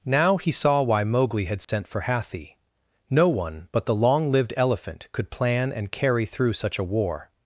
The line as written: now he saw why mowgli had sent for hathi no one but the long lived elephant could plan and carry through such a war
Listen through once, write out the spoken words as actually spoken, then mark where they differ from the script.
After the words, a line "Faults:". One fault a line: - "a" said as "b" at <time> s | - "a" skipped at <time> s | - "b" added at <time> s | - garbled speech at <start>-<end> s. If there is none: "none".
now he saw why mowgli had sent for hathi no one but the long lived elephant could plan and carry through such a war
Faults:
none